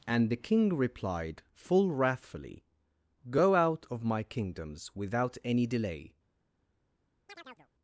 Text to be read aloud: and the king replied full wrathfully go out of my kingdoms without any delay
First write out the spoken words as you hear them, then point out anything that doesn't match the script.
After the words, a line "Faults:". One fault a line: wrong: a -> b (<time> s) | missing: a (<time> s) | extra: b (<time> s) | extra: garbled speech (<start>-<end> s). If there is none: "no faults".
and the king replied full wrathfully go out of my kingdoms without any delay
Faults:
no faults